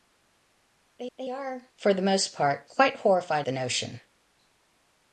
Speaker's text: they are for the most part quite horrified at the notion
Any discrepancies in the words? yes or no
yes